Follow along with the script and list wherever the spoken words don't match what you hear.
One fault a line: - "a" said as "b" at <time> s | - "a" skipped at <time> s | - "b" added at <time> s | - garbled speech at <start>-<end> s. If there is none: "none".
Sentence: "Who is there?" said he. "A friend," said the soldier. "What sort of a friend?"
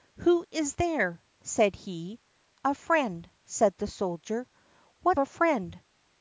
- "sort of" skipped at 5.2 s